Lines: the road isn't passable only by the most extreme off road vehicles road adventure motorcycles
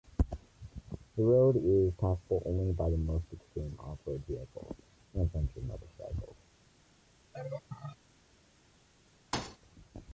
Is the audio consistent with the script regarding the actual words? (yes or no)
no